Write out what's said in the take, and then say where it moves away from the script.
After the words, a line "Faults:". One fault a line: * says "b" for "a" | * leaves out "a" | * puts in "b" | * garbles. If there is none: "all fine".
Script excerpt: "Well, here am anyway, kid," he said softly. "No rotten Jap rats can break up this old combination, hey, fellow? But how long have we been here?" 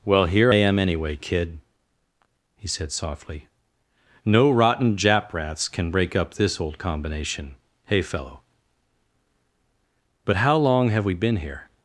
"Well, here am anyway, kid," he said softly. "No rotten Jap rats can break up this old combination, hey, fellow? But how long have we been here?"
Faults:
all fine